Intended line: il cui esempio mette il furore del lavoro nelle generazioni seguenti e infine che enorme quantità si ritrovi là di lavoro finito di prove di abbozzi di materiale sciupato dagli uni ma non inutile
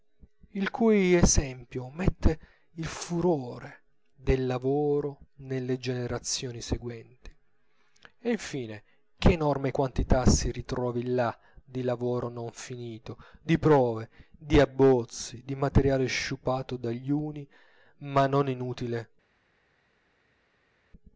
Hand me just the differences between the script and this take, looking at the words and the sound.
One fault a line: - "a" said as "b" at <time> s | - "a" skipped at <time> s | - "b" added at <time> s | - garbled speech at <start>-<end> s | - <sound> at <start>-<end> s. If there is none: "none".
- "non" added at 12.3 s